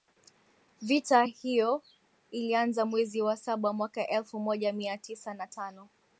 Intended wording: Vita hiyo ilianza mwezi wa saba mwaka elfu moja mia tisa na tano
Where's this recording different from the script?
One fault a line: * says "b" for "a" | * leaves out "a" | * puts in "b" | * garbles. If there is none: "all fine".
all fine